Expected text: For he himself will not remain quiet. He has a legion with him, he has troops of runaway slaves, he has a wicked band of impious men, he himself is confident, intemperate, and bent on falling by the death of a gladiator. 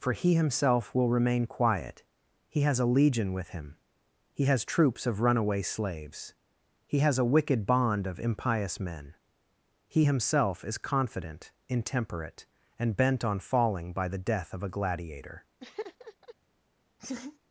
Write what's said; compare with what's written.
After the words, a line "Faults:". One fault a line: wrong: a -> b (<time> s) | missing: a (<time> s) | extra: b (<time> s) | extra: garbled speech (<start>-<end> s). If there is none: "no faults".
For he himself will remain quiet. He has a legion with him, he has troops of runaway slaves, he has a wicked bond of impious men, he himself is confident, intemperate, and bent on falling by the death of a gladiator.
Faults:
missing: not (1.1 s)
wrong: band -> bond (7.7 s)